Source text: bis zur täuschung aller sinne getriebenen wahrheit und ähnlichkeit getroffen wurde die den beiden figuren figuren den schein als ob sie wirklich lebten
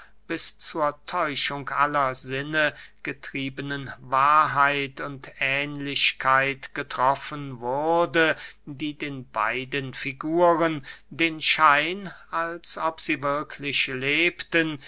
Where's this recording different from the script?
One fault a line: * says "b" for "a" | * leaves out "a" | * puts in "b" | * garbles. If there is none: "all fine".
* leaves out "figuren"